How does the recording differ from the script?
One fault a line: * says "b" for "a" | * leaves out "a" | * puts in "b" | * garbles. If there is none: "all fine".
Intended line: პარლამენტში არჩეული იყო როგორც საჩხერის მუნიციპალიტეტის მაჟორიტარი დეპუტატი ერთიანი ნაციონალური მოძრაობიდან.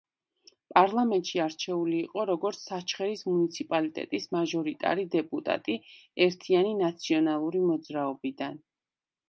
all fine